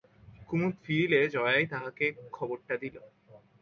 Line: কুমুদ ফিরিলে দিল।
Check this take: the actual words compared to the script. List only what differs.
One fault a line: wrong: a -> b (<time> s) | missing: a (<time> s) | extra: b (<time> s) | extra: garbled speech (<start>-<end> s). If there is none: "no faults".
extra: জয়াই তাহাকে খবরটা (1.3 s)